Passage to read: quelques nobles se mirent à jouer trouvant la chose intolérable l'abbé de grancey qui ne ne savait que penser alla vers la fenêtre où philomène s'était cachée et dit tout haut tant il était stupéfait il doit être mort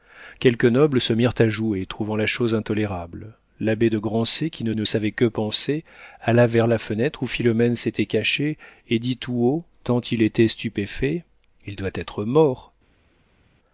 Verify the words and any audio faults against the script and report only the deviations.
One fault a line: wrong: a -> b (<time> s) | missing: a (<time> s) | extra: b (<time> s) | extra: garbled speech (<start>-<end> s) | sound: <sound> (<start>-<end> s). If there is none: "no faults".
no faults